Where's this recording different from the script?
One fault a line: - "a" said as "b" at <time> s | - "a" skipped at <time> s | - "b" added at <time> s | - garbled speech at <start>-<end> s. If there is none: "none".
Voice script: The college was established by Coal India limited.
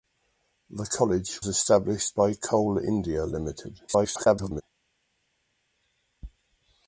- "was" skipped at 1.4 s
- garbled speech at 3.9-4.6 s